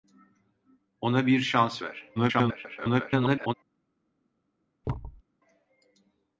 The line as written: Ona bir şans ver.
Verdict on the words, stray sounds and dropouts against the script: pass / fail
fail